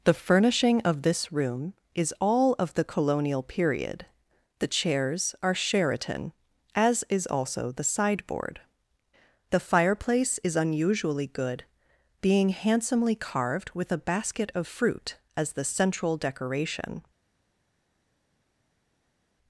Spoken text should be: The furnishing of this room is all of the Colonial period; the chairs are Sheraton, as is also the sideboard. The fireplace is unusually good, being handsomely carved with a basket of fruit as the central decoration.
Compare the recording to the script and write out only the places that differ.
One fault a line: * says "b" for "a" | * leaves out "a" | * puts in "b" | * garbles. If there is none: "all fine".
all fine